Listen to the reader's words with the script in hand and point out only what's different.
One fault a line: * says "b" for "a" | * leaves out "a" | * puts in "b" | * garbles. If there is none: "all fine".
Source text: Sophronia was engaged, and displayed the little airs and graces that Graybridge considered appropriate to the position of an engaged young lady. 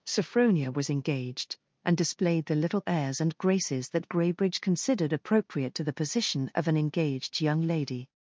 all fine